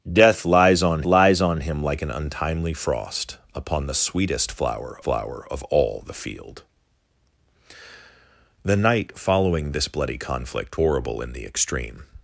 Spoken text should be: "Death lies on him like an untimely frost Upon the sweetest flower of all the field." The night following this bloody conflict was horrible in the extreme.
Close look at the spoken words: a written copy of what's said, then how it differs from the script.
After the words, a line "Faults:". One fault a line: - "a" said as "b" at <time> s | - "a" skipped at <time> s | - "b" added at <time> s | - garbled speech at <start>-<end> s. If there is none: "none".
"Death lies on lies on him like an untimely frost Upon the sweetest flower flower of all the field." The night following this bloody conflict horrible in the extreme.
Faults:
- "lies on" added at 1.0 s
- "flower" added at 5.0 s
- "was" skipped at 10.8 s